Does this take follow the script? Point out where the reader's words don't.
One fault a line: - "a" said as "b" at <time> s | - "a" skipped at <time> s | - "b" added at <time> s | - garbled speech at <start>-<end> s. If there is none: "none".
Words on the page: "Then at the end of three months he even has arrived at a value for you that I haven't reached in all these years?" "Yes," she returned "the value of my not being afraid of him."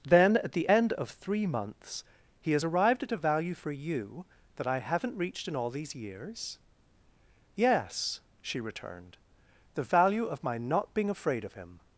- "even" skipped at 2.5 s